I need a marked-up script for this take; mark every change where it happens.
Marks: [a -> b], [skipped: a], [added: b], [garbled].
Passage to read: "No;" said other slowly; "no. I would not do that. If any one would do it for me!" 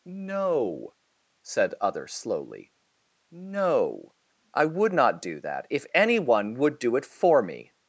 "No;" said other slowly; "no. I would not do that. If any one would do it for me!"